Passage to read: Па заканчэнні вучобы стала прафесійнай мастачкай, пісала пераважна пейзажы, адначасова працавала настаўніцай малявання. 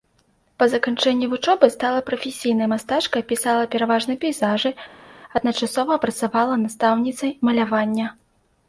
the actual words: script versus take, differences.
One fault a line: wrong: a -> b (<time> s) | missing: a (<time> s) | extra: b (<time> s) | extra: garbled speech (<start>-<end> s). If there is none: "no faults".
no faults